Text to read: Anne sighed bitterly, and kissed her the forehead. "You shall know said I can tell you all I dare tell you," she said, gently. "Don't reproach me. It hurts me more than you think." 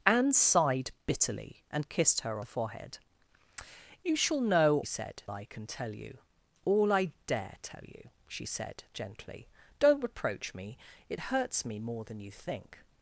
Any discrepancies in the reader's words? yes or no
no